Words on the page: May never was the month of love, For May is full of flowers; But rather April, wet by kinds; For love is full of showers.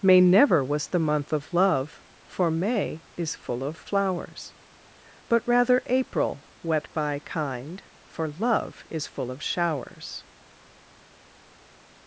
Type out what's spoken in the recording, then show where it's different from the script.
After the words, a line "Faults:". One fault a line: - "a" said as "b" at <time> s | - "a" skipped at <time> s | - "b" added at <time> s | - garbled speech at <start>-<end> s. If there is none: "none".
May never was the month of love, For May is full of flowers; But rather April, wet by kind; For love is full of showers.
Faults:
- "kinds" said as "kind" at 7.3 s